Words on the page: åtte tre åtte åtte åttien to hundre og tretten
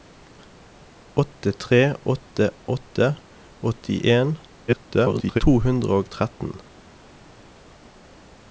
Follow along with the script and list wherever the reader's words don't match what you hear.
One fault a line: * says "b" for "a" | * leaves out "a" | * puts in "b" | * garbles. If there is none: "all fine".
* garbles